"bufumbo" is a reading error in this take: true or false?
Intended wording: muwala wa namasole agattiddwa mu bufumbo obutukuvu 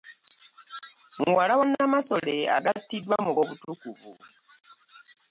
true